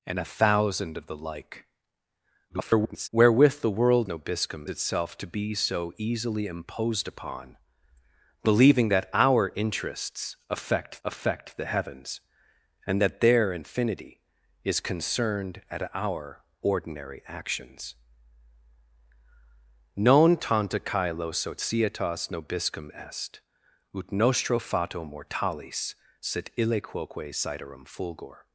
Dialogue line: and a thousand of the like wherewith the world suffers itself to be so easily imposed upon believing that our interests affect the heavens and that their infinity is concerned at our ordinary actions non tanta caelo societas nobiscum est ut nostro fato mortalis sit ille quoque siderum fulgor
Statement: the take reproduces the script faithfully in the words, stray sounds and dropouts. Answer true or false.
false